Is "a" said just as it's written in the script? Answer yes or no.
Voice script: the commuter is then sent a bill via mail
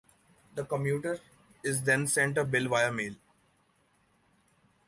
yes